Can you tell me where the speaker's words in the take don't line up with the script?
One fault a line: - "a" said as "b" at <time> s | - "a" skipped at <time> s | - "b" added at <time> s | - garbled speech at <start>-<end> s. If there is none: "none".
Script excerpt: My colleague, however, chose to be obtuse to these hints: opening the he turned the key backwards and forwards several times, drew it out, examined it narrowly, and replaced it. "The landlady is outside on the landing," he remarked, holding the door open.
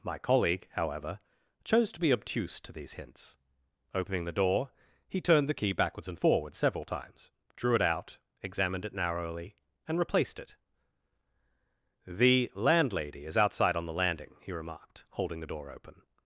- "door" added at 4.3 s